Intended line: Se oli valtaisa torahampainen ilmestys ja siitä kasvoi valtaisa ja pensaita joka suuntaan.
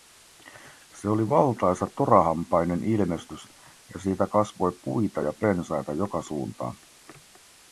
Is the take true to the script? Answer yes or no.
no